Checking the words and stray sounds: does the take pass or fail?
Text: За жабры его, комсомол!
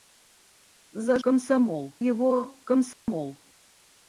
fail